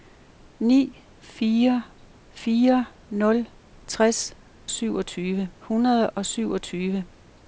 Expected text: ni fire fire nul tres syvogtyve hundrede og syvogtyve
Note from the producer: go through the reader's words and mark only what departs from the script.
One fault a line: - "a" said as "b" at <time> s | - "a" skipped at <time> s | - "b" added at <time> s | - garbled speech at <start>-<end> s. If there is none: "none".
none